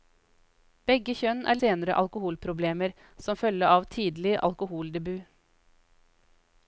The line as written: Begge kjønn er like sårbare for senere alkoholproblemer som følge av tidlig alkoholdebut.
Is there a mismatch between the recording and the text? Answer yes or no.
yes